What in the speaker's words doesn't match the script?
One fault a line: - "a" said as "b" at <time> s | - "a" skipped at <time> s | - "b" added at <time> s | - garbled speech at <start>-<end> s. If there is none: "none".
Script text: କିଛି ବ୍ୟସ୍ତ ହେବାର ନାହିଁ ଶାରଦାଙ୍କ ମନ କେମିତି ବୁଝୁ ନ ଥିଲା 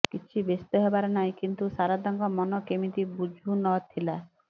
- "କିନ୍ତୁ" added at 1.4 s